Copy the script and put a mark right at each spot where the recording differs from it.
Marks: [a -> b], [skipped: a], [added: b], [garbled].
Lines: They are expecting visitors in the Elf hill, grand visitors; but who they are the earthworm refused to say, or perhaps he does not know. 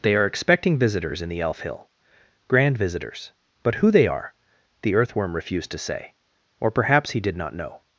They are expecting visitors in the Elf hill, grand visitors; but who they are the earthworm refused to say, or perhaps he [does -> did] not know.